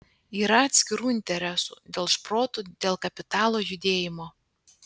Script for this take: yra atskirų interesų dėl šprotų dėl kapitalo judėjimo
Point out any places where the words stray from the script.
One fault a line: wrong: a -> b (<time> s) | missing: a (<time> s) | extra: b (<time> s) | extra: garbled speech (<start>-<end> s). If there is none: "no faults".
no faults